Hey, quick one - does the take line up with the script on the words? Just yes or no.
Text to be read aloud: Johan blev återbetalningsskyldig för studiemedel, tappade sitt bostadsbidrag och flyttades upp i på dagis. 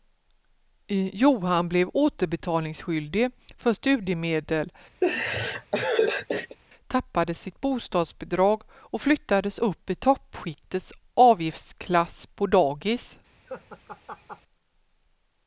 no